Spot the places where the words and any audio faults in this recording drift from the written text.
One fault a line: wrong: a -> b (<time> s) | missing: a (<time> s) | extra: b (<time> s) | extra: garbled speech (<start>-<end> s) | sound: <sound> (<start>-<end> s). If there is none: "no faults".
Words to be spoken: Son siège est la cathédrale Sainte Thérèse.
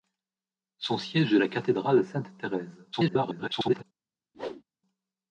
extra: garbled speech (2.9-3.8 s)
sound: whoosh (4.3-4.6 s)